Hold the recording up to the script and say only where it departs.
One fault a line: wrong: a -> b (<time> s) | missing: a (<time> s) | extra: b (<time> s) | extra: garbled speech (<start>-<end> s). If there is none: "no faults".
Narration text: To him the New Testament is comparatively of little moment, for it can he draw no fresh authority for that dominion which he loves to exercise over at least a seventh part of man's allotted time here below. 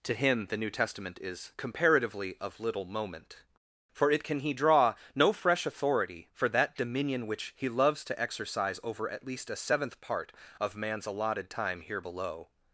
no faults